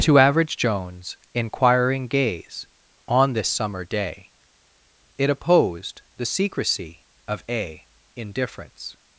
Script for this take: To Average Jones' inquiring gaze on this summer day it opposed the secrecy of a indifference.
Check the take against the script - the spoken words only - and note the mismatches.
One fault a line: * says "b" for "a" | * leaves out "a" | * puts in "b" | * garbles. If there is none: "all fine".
all fine